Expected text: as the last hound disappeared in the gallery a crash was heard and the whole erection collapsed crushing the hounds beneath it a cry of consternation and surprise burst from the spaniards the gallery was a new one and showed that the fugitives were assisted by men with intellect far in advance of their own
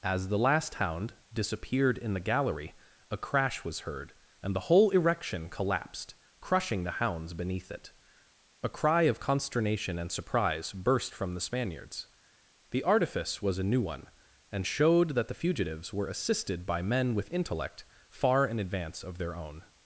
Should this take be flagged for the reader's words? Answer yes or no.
yes